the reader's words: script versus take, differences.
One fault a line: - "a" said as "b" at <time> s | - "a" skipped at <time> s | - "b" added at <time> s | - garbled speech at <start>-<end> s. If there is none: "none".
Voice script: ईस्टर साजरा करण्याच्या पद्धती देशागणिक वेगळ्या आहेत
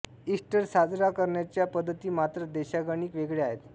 - "मात्र" added at 2.1 s